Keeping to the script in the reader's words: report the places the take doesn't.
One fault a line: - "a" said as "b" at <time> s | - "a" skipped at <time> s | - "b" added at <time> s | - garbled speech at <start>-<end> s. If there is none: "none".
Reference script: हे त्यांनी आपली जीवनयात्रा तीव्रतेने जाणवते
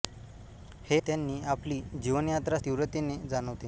none